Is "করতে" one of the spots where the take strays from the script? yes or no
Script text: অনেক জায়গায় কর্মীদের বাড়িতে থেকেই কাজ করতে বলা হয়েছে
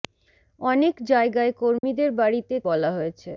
yes